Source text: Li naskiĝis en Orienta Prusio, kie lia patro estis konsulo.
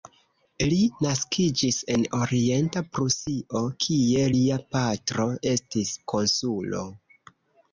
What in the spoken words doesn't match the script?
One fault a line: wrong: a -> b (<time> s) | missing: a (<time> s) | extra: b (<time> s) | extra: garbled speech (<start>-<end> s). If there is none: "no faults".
no faults